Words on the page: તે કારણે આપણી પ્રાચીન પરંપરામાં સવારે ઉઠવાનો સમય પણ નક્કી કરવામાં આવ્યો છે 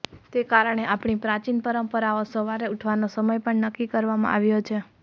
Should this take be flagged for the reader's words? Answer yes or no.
no